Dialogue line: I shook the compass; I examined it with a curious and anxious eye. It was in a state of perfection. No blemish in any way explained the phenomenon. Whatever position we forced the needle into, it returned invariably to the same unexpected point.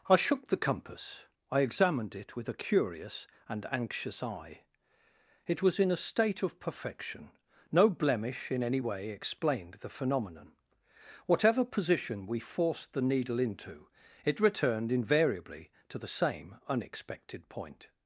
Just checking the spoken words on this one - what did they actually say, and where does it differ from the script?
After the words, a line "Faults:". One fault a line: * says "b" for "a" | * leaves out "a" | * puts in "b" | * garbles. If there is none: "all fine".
I shook the compass; I examined it with a curious and anxious eye. It was in a state of perfection. No blemish in any way explained the phenomenon. Whatever position we forced the needle into, it returned invariably to the same unexpected point.
Faults:
all fine